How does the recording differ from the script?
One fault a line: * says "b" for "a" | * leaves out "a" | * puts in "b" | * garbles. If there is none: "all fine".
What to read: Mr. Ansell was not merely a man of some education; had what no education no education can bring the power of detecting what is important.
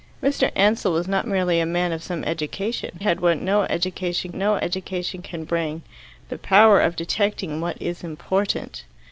all fine